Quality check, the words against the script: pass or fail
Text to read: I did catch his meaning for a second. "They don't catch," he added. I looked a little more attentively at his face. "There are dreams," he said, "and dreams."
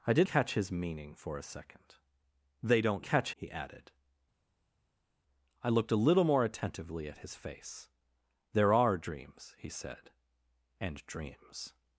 pass